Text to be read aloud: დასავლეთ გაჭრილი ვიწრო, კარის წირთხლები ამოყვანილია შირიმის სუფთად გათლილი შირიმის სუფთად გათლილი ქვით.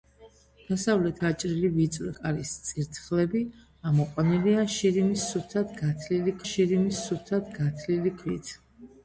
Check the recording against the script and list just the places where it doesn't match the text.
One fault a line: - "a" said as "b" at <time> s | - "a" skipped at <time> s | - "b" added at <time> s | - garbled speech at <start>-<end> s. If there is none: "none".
none